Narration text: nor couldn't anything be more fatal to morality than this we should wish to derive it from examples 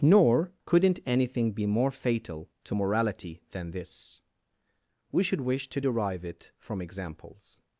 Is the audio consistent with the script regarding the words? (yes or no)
yes